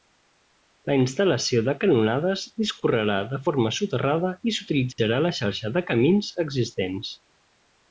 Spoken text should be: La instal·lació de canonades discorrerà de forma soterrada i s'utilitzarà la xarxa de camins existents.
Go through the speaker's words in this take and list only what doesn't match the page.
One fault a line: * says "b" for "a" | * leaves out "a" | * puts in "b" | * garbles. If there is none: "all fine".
all fine